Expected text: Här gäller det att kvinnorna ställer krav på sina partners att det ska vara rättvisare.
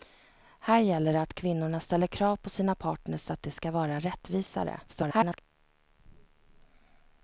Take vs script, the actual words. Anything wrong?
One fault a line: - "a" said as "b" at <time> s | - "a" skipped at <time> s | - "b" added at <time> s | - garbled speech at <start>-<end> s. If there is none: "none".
- garbled speech at 4.9-5.4 s